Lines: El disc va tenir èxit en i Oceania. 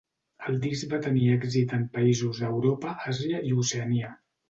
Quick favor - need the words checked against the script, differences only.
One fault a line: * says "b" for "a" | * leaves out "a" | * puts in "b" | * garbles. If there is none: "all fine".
* puts in "països d'Europa Àsia"